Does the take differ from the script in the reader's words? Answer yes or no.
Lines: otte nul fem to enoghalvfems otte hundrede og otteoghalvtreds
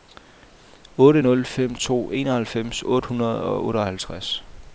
no